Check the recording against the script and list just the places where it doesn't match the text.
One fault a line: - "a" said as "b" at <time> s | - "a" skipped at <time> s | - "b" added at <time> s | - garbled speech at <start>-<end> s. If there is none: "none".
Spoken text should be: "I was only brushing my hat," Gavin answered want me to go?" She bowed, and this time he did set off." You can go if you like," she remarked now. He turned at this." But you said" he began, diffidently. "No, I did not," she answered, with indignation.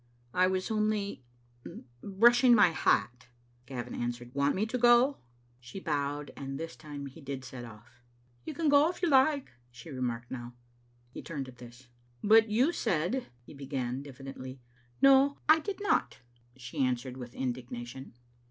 none